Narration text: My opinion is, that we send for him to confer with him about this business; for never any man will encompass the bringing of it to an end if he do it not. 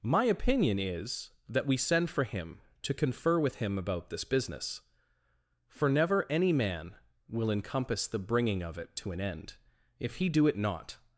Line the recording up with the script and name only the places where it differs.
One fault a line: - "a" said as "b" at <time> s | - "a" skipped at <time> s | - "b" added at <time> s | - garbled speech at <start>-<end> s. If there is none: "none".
none